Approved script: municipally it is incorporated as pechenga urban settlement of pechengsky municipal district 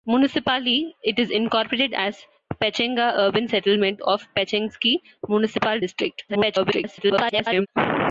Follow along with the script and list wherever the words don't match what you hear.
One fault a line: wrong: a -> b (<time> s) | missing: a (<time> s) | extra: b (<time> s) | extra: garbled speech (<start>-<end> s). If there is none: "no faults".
extra: garbled speech (6.3-7.7 s)